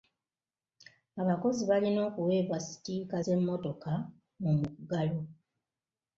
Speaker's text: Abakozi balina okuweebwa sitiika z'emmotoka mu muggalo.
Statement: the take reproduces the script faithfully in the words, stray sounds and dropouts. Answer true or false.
true